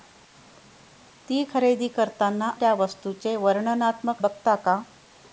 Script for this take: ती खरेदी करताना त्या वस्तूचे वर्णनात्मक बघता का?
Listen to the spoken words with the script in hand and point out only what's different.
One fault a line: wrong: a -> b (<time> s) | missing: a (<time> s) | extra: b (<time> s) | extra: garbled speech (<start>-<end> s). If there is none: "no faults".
no faults